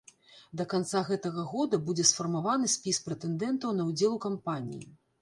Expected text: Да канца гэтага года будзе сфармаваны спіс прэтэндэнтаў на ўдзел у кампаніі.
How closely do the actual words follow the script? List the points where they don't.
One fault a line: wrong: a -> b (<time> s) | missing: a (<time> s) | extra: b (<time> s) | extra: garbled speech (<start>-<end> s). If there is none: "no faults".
no faults